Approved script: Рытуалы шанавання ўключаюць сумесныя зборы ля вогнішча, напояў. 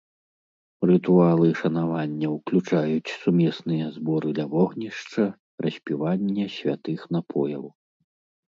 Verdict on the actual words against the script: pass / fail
fail